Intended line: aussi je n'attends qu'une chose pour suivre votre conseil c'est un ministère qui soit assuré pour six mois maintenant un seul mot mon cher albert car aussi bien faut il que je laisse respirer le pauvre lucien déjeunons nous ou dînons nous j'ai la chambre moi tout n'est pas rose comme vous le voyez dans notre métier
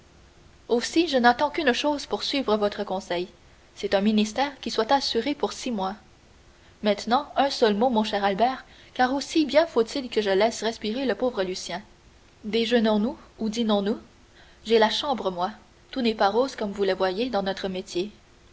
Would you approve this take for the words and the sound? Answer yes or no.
yes